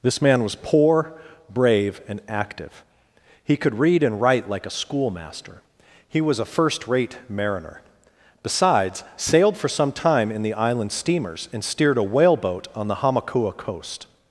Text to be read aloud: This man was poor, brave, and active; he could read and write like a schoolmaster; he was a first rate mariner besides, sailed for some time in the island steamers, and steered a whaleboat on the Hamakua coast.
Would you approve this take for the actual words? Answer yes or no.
yes